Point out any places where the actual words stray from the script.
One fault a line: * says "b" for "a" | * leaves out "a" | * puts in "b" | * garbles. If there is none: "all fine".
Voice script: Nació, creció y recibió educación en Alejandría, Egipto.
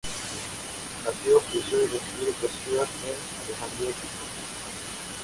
all fine